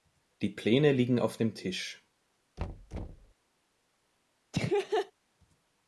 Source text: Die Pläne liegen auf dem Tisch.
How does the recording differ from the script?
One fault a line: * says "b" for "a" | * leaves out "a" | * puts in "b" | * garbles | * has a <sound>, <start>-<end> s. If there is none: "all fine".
* has a thud, 2.6-3.3 s
* has a laugh, 4.5-5.1 s